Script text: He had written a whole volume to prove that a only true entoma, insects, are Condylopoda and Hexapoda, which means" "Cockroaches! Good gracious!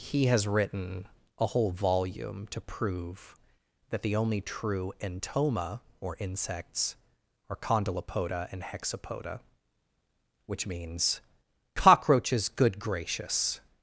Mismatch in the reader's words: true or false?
true